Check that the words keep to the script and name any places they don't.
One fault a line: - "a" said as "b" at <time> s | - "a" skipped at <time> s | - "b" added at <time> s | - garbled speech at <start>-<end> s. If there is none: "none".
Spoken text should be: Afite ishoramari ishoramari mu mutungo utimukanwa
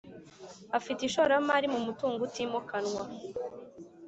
- "ishoramari" skipped at 1.7 s